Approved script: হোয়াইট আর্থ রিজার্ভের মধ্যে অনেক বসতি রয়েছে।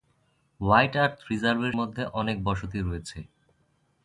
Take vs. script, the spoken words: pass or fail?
pass